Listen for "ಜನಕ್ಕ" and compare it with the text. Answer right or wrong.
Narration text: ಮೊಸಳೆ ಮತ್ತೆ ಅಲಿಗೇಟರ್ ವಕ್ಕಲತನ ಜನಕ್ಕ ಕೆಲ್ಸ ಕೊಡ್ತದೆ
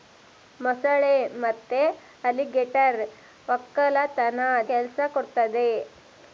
wrong